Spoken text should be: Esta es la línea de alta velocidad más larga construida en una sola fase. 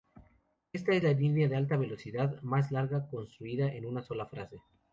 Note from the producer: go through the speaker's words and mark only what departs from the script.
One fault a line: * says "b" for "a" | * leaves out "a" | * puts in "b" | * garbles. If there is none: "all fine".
all fine